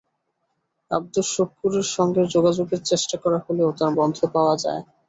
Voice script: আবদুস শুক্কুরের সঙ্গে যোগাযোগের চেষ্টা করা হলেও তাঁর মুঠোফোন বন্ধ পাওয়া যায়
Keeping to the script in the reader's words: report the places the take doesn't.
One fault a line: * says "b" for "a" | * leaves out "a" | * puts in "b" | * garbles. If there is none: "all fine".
* leaves out "মুঠোফোন"